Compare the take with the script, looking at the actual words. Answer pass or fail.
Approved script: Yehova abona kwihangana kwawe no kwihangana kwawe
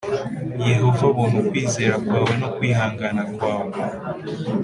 fail